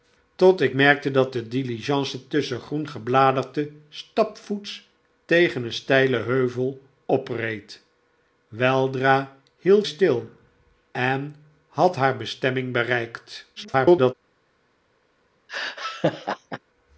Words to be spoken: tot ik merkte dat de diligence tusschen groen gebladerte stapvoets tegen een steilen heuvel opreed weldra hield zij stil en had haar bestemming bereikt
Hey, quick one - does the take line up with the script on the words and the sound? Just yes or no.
no